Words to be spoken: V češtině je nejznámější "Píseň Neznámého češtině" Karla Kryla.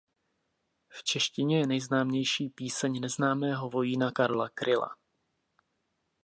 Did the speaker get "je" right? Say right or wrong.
right